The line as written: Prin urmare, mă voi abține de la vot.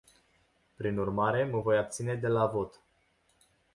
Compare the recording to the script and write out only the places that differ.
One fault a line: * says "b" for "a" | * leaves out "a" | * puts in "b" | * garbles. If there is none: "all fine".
all fine